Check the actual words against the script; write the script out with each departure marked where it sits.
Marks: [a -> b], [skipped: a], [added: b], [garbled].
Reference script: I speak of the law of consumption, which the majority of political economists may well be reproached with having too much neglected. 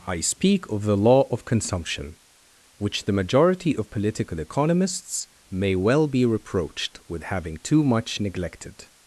I speak of the law of consumption, which the majority of political economists may well be reproached with having too much neglected.